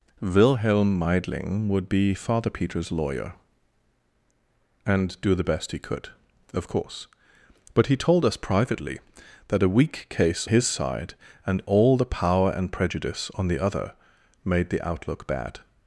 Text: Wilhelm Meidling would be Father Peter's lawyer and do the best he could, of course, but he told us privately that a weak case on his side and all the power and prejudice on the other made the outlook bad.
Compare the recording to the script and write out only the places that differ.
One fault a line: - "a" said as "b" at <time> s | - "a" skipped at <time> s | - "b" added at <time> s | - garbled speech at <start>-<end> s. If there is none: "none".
- "on" skipped at 10.5 s